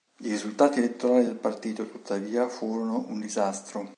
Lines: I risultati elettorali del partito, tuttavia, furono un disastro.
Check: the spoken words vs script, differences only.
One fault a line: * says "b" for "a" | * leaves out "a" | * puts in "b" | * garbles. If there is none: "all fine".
all fine